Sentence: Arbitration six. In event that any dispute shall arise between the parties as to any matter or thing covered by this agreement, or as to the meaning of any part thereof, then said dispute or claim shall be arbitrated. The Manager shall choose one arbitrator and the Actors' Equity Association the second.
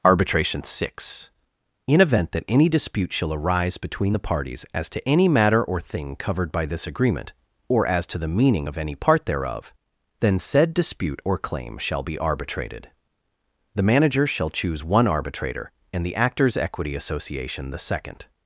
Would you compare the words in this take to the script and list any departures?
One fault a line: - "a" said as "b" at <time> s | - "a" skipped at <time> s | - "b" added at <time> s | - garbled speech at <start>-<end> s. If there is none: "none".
none